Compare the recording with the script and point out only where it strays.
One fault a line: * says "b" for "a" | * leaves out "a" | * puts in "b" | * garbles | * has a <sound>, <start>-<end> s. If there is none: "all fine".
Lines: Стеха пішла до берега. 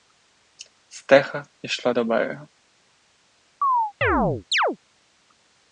* has a chirp, 3.6-4.8 s